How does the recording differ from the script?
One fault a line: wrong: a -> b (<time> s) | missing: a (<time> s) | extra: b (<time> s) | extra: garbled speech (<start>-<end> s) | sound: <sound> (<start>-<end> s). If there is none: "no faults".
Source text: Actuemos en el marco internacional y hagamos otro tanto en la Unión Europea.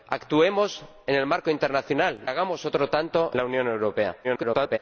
missing: y (2.2 s)
missing: en (3.3 s)
extra: garbled speech (4.2-4.8 s)